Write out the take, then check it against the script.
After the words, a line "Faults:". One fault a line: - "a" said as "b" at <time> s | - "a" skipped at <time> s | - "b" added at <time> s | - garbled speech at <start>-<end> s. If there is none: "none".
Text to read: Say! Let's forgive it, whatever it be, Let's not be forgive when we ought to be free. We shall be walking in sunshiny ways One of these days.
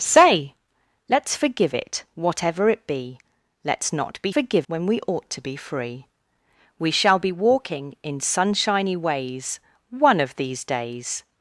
Say! Let's forgive it, whatever it be, Let's not be forgive when we ought to be free. We shall be walking in sunshiny ways One of these days.
Faults:
none